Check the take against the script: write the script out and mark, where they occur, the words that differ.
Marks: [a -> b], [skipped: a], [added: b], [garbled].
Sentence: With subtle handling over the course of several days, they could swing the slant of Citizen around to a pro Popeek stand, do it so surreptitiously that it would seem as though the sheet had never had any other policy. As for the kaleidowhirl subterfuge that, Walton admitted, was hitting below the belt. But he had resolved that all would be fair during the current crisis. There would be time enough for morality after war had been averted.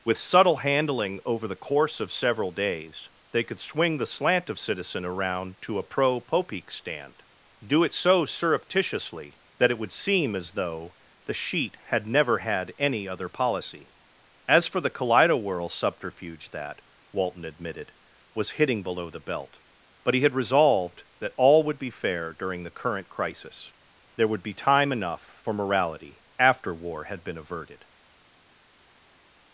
With subtle handling over the course of several days, they could swing the slant of Citizen around to a pro Popeek stand, do it so surreptitiously that it would seem as though the sheet had never had any other policy. As for the kaleidowhirl subterfuge that, Walton admitted, was hitting below the belt. But he had resolved that all would be fair during the current crisis. There would be time enough for morality after war had been averted.